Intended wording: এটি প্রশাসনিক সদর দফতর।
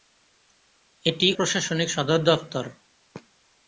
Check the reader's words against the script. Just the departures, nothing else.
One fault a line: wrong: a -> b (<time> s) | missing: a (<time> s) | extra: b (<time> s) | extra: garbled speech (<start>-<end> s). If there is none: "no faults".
no faults